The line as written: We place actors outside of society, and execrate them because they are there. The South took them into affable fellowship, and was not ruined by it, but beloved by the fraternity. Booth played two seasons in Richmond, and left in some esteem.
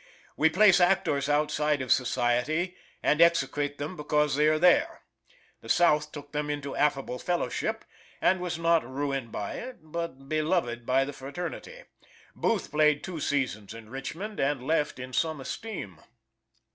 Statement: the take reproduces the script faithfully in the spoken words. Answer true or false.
true